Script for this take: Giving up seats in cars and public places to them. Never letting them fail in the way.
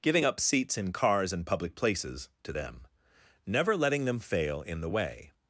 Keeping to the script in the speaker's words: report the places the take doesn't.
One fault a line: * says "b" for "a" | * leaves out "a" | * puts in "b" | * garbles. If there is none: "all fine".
all fine